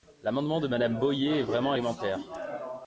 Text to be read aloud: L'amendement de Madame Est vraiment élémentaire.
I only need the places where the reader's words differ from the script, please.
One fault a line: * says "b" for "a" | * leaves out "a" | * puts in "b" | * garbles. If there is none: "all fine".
* puts in "Boyer"